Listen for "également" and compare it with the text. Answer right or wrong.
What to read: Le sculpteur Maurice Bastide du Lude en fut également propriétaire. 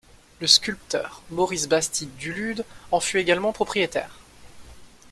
right